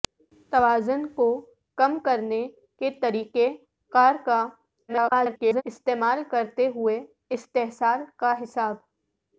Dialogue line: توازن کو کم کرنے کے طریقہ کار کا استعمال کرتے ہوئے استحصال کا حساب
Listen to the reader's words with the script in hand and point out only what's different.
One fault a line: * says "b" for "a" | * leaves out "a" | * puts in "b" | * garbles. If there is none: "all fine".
* garbles